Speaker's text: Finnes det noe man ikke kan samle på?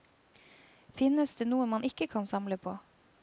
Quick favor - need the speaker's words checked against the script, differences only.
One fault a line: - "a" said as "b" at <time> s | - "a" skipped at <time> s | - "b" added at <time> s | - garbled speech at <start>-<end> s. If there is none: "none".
none